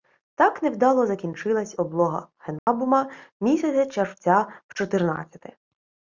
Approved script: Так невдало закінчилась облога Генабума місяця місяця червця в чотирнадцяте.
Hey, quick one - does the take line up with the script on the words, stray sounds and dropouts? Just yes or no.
no